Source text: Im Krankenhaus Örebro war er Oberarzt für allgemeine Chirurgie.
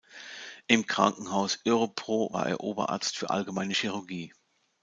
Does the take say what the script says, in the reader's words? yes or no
yes